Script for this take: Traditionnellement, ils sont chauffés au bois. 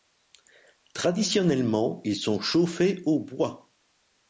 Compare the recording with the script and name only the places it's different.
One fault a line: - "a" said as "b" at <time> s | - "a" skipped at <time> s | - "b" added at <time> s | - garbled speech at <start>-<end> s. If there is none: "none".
none